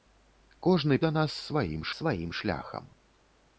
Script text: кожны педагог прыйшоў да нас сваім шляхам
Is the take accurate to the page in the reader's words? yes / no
no